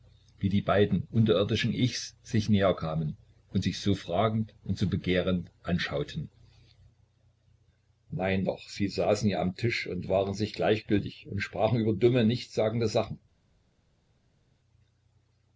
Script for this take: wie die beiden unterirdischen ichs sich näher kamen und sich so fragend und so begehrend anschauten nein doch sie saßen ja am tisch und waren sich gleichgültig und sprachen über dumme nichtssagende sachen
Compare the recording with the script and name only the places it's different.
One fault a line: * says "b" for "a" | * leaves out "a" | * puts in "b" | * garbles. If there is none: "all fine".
all fine